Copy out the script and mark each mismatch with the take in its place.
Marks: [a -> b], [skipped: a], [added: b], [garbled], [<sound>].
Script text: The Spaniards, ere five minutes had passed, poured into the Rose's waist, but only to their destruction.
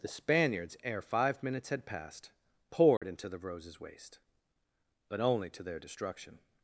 The Spaniards, ere five minutes had passed, poured [dropout] into the Rose's waist, but only to their destruction.